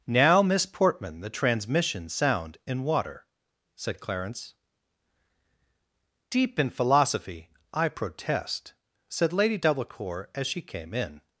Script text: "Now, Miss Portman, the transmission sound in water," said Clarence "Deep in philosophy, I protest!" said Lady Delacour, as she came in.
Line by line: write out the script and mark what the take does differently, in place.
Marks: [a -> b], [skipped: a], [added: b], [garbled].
"Now, Miss Portman, the transmission sound in water," said Clarence "Deep in philosophy, I protest!" said Lady Delacour, as she came in.